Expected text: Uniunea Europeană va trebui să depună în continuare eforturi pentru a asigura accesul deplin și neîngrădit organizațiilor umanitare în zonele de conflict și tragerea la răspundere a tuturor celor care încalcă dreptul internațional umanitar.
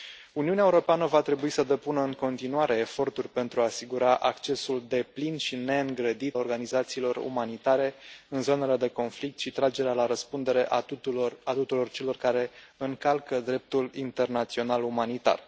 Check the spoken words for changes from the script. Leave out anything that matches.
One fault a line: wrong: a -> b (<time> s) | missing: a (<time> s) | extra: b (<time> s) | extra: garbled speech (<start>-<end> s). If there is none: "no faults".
no faults